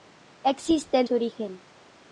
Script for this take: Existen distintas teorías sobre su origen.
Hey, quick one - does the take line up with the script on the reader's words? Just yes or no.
no